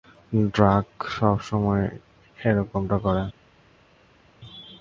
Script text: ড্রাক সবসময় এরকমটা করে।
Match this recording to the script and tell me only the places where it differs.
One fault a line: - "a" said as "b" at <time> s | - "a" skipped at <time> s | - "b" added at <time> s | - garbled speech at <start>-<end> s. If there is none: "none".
none